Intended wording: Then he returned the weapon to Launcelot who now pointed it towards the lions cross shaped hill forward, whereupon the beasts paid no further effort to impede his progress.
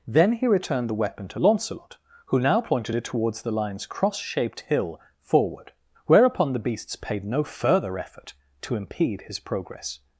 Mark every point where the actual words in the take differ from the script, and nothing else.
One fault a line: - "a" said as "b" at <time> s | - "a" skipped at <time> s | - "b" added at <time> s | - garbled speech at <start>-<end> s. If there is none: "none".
none